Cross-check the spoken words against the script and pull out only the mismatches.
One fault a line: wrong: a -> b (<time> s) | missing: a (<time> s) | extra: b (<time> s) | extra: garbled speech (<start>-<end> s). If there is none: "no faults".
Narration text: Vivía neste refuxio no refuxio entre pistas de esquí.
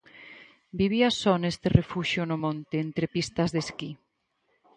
extra: só (1.2 s)
wrong: refuxio -> monte (2.4 s)